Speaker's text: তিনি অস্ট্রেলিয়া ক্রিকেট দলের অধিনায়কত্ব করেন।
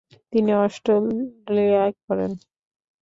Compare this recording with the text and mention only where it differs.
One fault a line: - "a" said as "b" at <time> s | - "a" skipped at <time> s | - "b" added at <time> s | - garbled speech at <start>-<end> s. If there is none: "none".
- "ক্রিকেট দলের অধিনায়কত্ব" skipped at 1.8 s